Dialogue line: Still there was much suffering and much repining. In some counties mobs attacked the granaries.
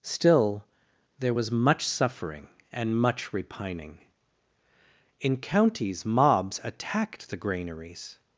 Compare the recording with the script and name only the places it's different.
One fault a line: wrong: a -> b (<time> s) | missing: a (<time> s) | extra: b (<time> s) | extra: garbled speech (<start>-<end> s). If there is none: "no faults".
missing: some (5.4 s)